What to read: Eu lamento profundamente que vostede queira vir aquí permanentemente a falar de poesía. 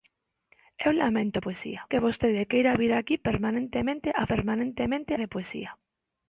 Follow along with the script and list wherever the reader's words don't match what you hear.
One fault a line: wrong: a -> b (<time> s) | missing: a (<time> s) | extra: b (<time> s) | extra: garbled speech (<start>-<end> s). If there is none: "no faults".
wrong: profundamente -> poesía (1.4 s)
wrong: falar -> permanentemente (4.3 s)